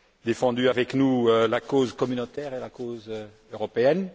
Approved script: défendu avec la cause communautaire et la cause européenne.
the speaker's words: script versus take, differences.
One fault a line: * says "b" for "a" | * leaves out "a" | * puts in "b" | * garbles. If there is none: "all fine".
* puts in "nous"